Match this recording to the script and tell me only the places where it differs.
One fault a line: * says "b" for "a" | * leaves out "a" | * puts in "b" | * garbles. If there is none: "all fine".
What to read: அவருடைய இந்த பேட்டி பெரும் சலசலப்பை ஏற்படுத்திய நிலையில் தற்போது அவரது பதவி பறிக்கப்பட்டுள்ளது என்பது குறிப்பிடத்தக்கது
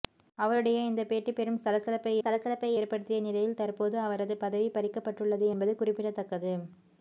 * puts in "சலசலப்பை"